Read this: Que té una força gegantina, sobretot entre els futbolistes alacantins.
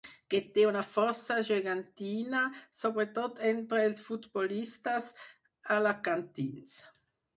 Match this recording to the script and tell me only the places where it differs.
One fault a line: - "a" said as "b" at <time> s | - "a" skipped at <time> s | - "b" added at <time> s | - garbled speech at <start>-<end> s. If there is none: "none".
none